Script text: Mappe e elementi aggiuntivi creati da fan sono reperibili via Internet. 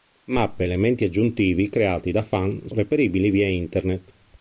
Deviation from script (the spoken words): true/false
true